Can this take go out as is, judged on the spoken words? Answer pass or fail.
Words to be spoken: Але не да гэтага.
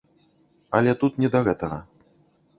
fail